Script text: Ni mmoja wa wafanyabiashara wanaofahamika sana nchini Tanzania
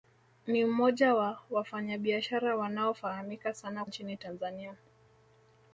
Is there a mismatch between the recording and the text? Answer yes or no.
no